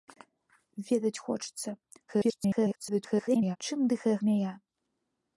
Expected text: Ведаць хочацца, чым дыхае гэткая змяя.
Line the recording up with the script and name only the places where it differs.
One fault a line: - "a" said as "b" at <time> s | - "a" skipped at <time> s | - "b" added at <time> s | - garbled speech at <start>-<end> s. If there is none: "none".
- garbled speech at 2.1-3.6 s
- "гэткая" skipped at 4.2 s